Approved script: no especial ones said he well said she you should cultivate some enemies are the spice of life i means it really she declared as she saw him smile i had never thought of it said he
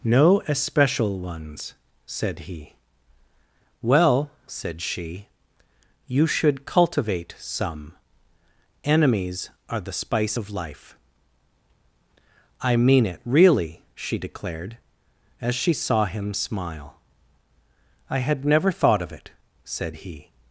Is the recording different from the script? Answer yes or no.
yes